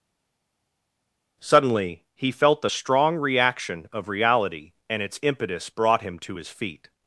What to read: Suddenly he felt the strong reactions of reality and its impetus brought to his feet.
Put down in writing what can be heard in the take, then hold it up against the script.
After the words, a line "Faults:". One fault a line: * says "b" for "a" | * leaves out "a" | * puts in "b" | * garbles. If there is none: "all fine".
Suddenly he felt the strong reaction of reality and its impetus brought him to his feet.
Faults:
* says "reaction" for "reactions"
* puts in "him"